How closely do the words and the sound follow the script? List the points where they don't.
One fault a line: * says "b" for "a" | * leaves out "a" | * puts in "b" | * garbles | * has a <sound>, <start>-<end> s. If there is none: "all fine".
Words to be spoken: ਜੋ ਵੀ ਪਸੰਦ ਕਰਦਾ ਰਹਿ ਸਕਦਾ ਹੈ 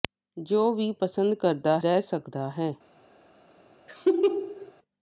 * has a laugh, 3.9-4.7 s